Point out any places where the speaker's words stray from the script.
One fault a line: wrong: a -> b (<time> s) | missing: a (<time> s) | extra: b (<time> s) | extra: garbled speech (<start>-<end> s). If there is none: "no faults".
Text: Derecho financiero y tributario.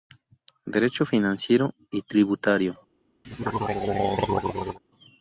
no faults